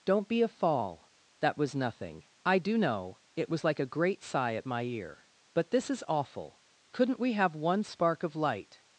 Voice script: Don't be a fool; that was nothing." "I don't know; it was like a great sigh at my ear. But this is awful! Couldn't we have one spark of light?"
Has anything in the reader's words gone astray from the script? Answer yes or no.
yes